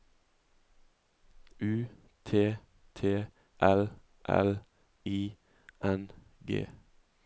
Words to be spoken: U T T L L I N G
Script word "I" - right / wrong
right